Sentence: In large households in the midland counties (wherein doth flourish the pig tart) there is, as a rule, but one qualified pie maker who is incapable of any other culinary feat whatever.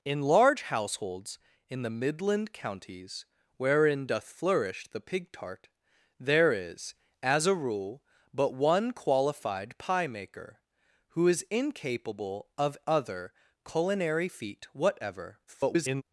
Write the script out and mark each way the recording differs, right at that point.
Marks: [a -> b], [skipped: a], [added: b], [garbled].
In large households in the midland counties (wherein doth flourish the pig tart) there is, as a rule, but one qualified pie maker who is incapable of [skipped: any] other culinary feat whatever. [garbled]